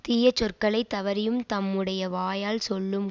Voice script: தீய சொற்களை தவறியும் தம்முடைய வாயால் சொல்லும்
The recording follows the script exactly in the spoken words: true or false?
true